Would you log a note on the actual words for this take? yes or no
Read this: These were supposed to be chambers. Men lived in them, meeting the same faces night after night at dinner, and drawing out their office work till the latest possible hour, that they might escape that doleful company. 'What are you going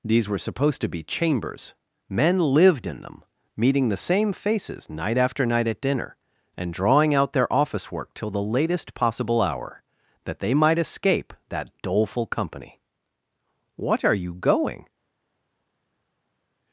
no